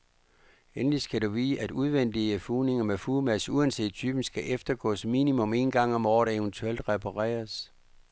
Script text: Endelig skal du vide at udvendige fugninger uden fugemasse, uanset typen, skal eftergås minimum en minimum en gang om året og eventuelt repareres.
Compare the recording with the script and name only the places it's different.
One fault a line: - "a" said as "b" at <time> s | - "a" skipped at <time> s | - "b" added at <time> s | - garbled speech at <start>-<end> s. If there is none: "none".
- "uden" said as "med" at 2.8 s
- "minimum en" skipped at 5.7 s